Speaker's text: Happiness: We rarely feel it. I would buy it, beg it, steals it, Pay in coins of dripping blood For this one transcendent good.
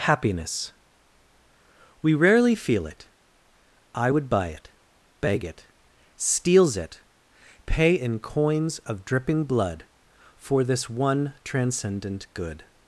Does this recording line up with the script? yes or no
yes